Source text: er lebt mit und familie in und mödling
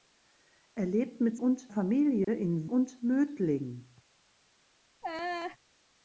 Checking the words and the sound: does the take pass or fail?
fail